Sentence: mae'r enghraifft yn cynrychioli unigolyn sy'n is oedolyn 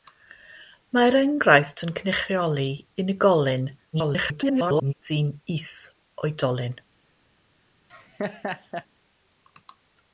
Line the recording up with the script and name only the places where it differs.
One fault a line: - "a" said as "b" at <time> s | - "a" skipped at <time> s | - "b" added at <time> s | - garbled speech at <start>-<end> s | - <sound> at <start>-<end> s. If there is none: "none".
- garbled speech at 3.9-4.9 s
- laugh at 7.9-8.9 s